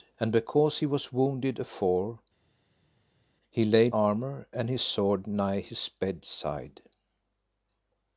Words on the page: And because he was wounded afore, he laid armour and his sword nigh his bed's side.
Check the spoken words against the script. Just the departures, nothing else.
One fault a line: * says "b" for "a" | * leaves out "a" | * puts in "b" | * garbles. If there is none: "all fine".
all fine